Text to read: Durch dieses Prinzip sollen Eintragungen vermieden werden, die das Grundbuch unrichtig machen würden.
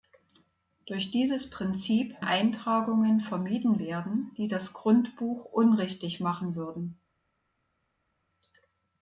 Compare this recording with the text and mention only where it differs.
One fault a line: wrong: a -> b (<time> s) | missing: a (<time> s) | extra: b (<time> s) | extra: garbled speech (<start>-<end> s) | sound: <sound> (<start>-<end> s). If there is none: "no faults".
missing: sollen (2.2 s)